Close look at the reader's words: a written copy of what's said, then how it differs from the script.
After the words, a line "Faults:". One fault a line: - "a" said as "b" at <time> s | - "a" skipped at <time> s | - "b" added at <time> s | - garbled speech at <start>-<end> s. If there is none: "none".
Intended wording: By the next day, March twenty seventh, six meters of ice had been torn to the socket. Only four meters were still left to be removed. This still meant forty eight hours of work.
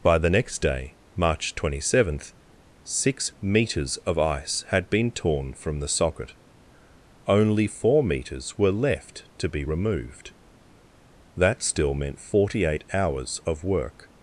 By the next day, March twenty seventh, six meters of ice had been torn from the socket. Only four meters were left to be removed. That still meant forty eight hours of work.
Faults:
- "to" said as "from" at 5.5 s
- "still" skipped at 8.7 s
- "This" said as "That" at 11.4 s